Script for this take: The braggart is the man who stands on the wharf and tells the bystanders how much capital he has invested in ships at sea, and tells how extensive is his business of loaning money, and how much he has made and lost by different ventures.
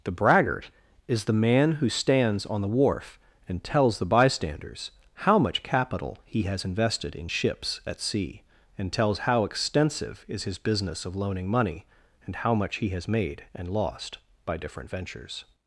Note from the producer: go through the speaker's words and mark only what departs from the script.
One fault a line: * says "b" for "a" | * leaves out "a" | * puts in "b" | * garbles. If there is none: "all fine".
all fine